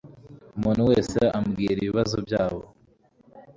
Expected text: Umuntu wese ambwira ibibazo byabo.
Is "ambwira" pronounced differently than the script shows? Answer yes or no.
no